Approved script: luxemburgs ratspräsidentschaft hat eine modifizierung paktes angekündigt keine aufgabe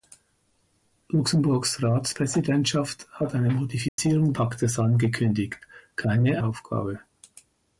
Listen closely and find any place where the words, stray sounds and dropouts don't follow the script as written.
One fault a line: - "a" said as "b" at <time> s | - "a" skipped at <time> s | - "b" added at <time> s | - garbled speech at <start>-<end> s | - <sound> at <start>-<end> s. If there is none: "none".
- dropout at 3.9-4.0 s